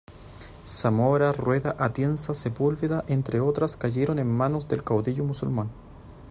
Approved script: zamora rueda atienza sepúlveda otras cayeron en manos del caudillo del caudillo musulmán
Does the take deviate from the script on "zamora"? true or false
false